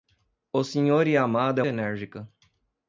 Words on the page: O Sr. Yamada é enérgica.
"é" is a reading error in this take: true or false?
false